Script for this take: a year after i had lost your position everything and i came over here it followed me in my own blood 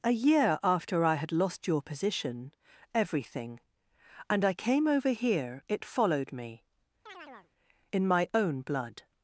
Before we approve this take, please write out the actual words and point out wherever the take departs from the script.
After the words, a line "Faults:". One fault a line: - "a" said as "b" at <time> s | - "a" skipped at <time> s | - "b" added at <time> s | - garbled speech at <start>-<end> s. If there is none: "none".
a year after i had lost your position everything and i came over here it followed me in my own blood
Faults:
none